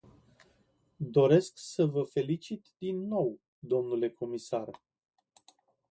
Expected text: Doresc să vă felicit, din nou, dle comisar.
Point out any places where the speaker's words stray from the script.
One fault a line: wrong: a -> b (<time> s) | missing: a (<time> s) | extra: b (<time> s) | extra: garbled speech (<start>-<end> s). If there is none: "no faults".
no faults